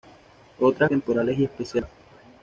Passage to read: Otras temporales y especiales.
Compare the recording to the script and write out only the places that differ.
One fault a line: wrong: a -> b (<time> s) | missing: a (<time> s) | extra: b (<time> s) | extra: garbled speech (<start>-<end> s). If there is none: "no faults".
no faults